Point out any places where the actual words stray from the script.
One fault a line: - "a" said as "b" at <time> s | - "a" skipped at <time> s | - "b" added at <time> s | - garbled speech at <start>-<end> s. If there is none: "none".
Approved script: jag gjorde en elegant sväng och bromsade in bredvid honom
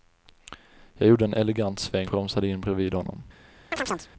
- "och" skipped at 2.1 s